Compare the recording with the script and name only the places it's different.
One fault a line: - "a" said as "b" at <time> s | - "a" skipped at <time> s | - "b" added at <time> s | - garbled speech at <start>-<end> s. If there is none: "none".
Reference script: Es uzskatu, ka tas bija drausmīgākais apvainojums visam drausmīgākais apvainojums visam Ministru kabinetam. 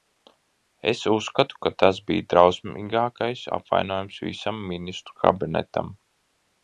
- "drausmīgākais apvainojums visam" skipped at 4.6 s